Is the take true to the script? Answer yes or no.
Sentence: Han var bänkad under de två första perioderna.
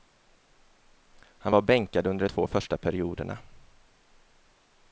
yes